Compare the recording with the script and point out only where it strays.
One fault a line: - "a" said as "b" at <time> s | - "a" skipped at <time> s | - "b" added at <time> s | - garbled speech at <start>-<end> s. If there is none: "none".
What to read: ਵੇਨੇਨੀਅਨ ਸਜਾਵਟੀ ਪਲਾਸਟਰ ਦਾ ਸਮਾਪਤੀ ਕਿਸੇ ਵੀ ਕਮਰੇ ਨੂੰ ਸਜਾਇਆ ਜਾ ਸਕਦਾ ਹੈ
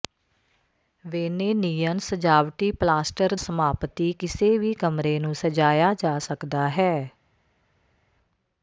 - "ਦਾ" skipped at 3.4 s